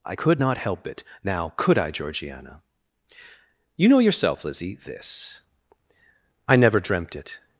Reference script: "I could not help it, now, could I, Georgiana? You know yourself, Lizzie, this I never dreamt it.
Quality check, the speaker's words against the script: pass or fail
pass